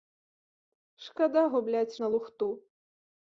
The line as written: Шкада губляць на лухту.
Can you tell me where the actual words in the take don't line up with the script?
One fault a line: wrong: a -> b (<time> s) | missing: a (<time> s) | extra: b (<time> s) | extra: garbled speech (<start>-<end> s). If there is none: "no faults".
no faults